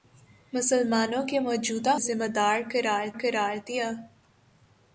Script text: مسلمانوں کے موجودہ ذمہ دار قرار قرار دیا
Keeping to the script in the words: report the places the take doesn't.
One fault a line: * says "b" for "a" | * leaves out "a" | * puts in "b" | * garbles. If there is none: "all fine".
all fine